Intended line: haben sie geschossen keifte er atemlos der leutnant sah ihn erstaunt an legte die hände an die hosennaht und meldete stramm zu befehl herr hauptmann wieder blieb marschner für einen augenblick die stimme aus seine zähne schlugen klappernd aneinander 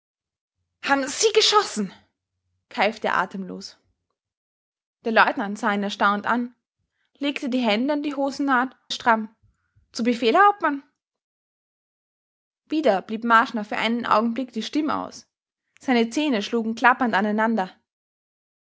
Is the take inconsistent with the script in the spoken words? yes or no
yes